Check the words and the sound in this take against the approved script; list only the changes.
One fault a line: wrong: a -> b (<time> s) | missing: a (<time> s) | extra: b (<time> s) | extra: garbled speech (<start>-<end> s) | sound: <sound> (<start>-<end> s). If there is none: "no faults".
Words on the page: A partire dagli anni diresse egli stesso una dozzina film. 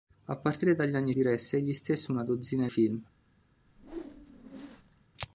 sound: whoosh (3.7-5.0 s)